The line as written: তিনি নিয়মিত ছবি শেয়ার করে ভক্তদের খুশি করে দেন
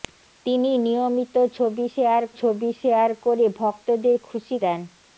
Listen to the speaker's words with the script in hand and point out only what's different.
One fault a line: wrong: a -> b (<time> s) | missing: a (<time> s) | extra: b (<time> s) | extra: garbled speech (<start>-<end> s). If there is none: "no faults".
extra: ছবি শেয়ার (2.4 s)
missing: করে (4.6 s)